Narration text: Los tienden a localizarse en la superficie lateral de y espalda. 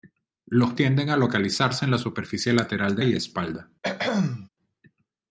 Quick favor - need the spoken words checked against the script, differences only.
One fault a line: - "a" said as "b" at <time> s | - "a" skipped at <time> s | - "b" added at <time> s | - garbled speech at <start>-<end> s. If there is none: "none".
none